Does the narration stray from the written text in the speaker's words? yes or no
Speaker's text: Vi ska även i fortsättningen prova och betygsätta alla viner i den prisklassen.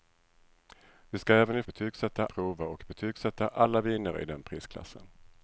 yes